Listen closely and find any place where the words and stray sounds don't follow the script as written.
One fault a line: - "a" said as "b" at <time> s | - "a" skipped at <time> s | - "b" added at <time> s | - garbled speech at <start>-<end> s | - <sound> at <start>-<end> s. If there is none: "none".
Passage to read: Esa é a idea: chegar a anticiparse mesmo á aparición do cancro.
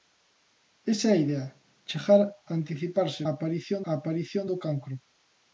- "mesmo" said as "aparición" at 3.3 s